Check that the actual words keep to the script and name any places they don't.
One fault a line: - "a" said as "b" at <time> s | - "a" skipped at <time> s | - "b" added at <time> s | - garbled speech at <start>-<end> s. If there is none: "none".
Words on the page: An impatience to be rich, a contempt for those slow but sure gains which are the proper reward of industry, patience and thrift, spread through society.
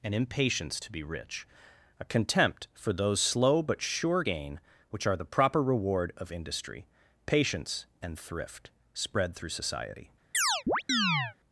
- "gains" said as "gain" at 4.2 s